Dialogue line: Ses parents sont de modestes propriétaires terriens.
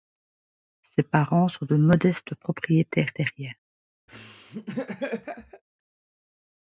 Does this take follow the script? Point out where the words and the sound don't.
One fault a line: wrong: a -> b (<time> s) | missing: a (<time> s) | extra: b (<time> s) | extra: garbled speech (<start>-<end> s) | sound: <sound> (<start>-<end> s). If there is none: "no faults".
sound: laugh (4.1-5.6 s)